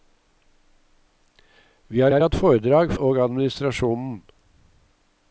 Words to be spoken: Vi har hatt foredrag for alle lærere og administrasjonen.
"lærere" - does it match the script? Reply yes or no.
no